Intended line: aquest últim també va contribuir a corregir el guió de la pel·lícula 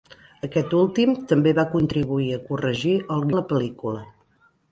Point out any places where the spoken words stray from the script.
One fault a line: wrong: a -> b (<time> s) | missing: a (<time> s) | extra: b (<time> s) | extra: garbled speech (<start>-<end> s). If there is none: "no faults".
missing: guió (3.2 s)